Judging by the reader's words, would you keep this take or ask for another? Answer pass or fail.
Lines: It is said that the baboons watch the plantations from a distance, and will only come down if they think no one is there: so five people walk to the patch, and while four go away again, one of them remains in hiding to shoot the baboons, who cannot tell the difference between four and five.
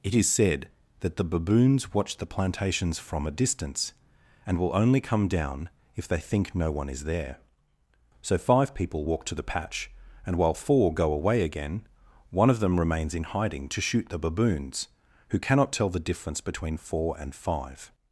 pass